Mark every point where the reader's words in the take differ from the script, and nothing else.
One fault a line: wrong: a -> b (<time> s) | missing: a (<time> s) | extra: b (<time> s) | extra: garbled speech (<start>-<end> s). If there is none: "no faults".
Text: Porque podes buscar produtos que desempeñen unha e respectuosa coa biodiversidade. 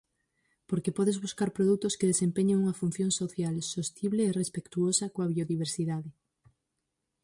extra: función social sostible (2.8 s)